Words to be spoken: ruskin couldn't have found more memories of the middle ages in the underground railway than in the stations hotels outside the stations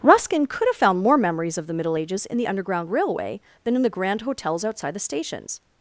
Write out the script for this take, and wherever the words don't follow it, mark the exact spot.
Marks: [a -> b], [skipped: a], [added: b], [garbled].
ruskin [couldn't -> could] have found more memories of the middle ages in the underground railway than in the [stations -> grand] hotels outside the stations